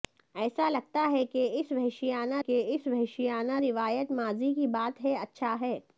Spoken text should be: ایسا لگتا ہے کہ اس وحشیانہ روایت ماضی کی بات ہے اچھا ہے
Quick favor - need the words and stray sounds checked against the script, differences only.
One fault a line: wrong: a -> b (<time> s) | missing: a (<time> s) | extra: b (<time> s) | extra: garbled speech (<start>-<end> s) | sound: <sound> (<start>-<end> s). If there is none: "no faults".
extra: کہ اس وحشیانہ (2.4 s)